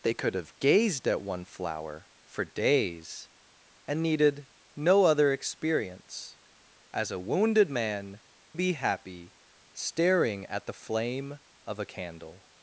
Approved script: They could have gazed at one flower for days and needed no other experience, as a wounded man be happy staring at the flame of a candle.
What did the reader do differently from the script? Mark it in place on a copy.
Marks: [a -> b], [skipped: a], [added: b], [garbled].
They could have gazed at one flower for days and needed no other experience, as a wounded man be happy staring at the flame of a candle.